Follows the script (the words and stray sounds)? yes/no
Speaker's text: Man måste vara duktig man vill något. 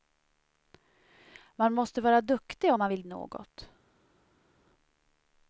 yes